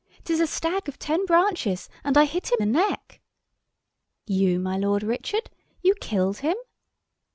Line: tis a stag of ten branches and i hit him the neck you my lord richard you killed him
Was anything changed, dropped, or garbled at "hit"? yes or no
no